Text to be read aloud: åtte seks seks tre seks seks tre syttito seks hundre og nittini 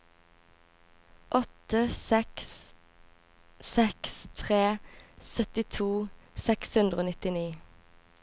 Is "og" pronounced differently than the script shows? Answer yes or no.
no